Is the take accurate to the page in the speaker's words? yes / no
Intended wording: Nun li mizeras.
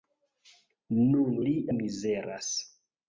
yes